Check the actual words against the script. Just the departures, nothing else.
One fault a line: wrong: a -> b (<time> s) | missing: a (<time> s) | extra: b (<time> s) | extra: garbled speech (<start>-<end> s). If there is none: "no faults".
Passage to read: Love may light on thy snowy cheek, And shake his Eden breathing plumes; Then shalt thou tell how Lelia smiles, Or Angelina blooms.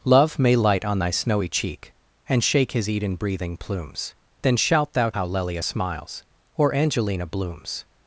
missing: tell (5.1 s)